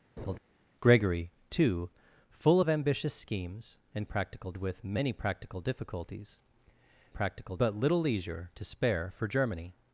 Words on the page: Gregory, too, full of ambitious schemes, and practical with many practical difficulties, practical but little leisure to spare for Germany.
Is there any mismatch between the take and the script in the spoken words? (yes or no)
no